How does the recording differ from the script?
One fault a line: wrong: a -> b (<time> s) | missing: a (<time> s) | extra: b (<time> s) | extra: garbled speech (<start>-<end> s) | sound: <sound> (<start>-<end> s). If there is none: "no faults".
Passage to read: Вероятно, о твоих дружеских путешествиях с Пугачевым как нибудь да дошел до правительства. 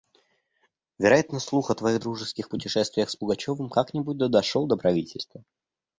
extra: слух (1.4 s)